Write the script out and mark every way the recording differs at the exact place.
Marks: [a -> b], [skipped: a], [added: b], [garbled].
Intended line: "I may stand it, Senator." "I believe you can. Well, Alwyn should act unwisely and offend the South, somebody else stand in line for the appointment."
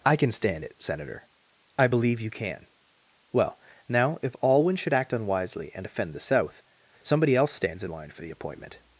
"I [may -> can] stand it, Senator." "I believe you can. Well, [added: now if] Alwyn should act unwisely and offend the South, somebody else [stand -> stands] in line for the appointment."